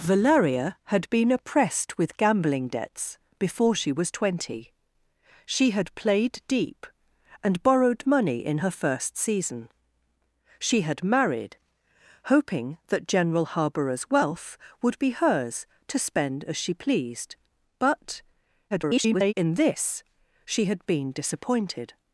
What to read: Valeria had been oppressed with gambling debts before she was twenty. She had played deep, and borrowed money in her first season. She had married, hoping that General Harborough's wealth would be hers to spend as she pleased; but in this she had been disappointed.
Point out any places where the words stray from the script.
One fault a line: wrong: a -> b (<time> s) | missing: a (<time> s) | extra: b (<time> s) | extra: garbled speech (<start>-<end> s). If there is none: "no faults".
extra: garbled speech (18.7-19.3 s)